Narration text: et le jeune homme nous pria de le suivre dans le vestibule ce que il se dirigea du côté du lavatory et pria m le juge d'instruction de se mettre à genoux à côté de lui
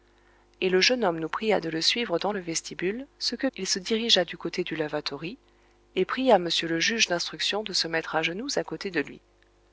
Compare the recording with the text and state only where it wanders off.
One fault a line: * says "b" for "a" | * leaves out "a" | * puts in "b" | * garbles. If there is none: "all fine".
all fine